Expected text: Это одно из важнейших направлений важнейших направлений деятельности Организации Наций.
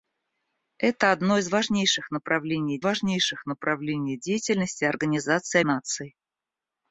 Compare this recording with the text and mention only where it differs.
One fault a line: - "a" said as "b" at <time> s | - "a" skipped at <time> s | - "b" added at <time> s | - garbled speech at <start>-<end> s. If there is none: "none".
none